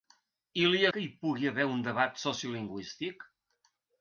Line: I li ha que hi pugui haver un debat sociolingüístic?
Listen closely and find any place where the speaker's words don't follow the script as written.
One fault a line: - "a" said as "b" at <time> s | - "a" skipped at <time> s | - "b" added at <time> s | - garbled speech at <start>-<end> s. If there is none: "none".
none